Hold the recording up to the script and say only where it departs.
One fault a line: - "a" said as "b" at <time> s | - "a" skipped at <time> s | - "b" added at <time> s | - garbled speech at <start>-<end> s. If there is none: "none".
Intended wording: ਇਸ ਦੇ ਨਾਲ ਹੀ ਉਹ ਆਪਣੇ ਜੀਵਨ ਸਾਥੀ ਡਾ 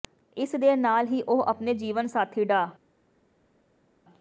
none